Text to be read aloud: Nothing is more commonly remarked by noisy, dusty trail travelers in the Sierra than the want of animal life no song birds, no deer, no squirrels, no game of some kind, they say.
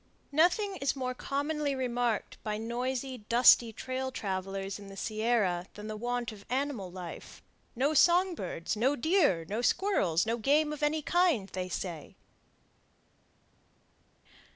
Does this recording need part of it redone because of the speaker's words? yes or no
yes